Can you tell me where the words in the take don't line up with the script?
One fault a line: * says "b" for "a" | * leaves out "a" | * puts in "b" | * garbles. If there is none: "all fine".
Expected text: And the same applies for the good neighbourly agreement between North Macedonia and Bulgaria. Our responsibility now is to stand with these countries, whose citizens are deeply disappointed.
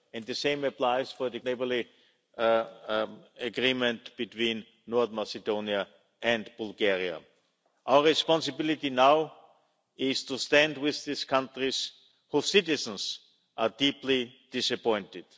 * leaves out "good"